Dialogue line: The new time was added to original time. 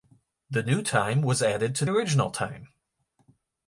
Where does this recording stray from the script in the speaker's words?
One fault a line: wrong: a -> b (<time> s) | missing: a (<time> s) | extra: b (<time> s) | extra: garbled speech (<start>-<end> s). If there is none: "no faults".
no faults